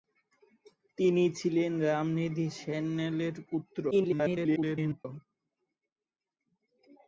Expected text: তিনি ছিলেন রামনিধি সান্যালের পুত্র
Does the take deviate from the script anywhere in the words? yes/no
yes